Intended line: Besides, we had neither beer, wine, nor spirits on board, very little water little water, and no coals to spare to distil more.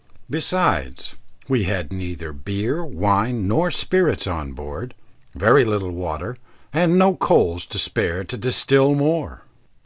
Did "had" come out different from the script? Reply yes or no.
no